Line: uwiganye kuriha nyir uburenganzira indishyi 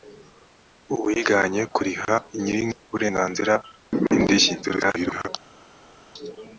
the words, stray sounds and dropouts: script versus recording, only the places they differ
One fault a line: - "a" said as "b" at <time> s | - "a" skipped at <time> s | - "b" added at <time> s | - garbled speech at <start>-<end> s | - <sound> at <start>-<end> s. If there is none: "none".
- garbled speech at 4.6-5.3 s